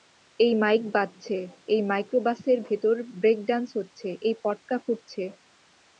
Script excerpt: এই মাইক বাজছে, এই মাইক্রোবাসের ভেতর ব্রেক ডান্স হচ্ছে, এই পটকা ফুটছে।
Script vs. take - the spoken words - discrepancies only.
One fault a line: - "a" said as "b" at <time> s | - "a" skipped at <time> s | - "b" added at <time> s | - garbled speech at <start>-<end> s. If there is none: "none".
none